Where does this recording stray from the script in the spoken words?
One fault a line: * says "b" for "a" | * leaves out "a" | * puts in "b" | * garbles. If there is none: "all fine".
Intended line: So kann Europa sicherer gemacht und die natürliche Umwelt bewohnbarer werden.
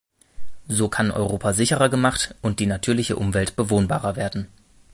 all fine